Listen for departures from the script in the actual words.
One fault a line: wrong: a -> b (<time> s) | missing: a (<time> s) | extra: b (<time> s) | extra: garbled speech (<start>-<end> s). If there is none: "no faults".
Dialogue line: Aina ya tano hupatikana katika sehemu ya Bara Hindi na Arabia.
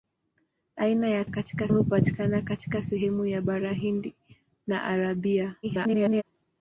wrong: tano -> katika (1.3 s)
extra: garbled speech (5.6-6.2 s)